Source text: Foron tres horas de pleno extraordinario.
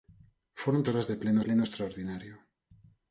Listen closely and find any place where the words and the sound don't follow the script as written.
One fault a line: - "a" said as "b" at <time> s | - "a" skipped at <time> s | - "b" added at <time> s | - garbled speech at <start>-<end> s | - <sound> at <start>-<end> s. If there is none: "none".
- "tres" skipped at 0.8 s
- "pleno" added at 1.4 s